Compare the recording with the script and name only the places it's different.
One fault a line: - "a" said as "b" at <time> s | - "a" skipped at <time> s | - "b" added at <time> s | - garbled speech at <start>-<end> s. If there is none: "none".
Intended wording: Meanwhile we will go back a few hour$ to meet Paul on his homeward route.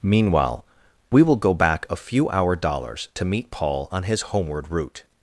- "dollars" added at 2.5 s